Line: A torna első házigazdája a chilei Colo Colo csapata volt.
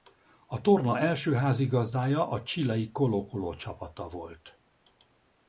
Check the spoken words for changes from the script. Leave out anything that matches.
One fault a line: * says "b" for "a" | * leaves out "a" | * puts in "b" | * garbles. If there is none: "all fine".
all fine